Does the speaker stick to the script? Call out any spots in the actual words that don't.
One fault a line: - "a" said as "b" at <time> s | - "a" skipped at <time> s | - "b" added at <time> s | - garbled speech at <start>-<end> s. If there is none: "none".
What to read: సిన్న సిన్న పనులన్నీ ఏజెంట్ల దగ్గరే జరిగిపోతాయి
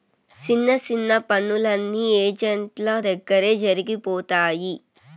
none